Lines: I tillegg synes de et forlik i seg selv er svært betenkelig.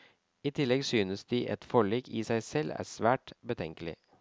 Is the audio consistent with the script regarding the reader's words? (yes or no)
yes